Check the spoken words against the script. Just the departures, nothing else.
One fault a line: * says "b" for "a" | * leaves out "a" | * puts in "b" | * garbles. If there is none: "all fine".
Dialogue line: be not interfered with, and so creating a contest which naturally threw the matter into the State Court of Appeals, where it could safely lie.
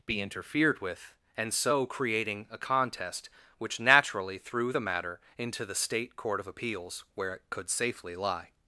* leaves out "not"